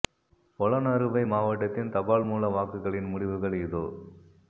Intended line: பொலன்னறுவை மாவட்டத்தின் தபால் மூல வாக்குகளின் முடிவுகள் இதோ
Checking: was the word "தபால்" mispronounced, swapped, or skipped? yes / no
no